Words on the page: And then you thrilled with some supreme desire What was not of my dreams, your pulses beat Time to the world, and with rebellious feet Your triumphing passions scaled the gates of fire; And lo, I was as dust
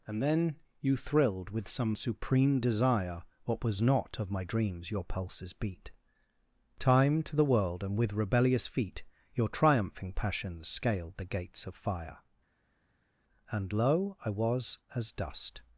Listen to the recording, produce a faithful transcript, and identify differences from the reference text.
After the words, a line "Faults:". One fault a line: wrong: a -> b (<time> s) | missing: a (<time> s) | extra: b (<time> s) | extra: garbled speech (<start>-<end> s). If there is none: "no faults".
And then you thrilled with some supreme desire What was not of my dreams, your pulses beat Time to the world, and with rebellious feet Your triumphing passions scaled the gates of fire; And lo, I was as dust
Faults:
no faults